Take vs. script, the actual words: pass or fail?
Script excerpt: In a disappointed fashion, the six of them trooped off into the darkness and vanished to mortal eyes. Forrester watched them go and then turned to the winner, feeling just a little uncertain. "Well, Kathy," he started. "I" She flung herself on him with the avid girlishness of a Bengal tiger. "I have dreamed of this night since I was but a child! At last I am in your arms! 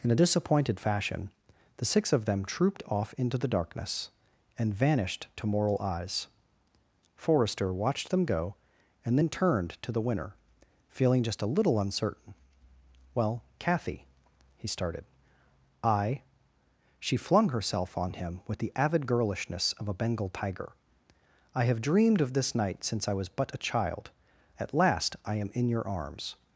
fail